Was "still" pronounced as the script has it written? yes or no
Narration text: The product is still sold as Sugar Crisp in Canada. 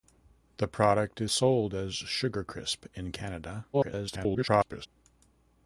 no